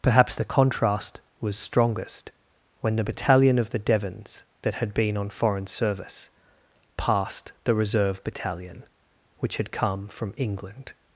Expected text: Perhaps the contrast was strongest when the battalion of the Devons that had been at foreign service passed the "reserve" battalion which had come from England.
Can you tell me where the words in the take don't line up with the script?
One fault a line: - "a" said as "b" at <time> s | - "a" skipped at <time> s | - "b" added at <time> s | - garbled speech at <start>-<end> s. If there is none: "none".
- "at" said as "on" at 5.2 s